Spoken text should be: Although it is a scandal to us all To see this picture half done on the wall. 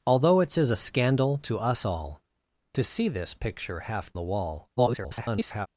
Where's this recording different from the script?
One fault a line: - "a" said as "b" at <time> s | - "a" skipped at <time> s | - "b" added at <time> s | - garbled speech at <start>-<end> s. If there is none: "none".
- "done on" skipped at 4.2 s
- garbled speech at 4.8-5.7 s